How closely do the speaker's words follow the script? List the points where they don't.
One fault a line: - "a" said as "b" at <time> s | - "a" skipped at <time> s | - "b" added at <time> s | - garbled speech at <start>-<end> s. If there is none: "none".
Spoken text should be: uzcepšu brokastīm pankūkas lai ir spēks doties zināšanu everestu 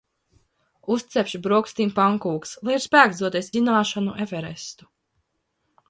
none